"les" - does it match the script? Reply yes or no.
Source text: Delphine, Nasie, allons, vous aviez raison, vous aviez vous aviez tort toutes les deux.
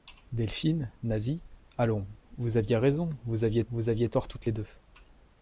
yes